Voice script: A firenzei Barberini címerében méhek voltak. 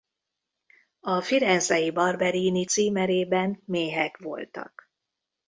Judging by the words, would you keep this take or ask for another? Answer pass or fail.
pass